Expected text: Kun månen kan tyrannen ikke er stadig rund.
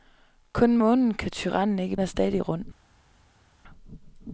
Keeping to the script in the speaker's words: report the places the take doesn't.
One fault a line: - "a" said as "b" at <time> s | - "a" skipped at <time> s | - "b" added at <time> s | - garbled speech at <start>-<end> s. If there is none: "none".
none